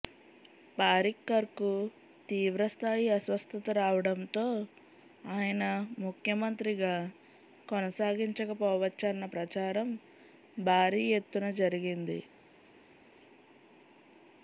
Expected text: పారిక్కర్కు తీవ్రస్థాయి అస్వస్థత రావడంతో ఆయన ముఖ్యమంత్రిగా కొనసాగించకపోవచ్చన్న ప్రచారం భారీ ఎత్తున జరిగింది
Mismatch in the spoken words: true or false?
false